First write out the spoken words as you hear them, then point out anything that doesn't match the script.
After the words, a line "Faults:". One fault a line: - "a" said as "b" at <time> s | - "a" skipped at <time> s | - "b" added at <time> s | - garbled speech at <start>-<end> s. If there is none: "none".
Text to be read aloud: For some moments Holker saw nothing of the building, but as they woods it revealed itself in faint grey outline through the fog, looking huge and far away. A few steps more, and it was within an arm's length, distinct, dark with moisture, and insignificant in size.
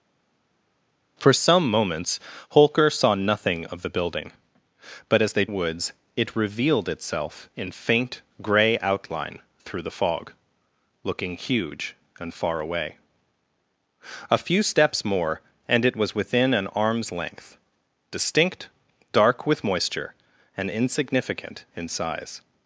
For some moments Holker saw nothing of the building, but as they woods it revealed itself in faint grey outline through the fog, looking huge and far away. A few steps more, and it was within an arm's length, distinct, dark with moisture, and insignificant in size.
Faults:
none